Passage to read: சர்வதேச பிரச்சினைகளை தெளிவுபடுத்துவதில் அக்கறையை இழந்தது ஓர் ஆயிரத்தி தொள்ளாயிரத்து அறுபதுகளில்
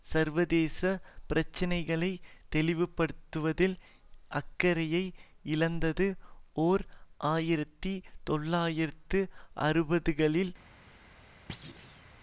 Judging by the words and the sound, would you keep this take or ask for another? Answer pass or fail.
fail